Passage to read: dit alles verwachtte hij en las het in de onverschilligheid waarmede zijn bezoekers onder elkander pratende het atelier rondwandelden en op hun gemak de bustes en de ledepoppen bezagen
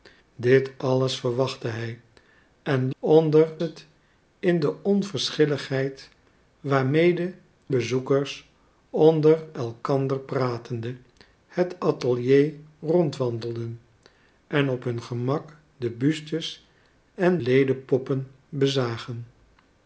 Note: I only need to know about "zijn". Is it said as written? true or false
false